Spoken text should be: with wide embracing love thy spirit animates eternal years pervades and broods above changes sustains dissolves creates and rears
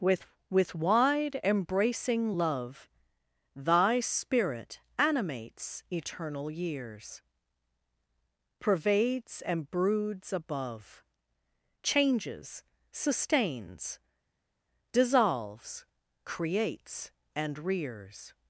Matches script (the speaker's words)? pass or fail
fail